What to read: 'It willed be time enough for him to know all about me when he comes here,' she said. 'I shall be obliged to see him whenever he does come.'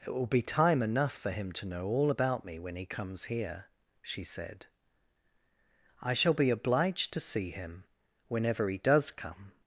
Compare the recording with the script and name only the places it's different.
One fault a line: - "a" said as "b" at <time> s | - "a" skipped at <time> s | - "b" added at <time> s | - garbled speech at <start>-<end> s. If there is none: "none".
- "willed" said as "will" at 0.1 s